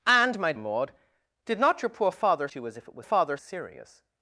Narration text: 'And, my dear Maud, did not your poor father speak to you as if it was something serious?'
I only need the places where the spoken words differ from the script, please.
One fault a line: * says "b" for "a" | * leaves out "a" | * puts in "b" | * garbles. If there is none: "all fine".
* leaves out "dear"
* leaves out "speak"
* says "father" for "something"